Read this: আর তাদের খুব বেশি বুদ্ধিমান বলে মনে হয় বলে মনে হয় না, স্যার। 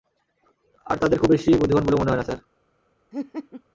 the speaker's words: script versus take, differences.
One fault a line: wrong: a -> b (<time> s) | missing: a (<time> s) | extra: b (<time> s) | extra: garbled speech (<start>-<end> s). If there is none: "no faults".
missing: বলে মনে হয় (2.2 s)